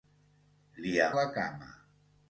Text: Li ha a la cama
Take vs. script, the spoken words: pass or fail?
pass